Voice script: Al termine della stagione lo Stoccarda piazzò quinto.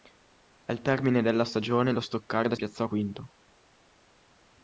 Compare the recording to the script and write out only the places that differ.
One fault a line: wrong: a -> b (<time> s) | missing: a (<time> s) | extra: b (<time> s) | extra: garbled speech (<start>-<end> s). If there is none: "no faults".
no faults